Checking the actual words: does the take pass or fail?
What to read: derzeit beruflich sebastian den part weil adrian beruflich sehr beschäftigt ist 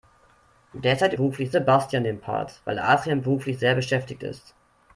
pass